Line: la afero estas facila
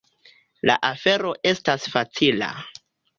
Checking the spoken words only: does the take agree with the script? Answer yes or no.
yes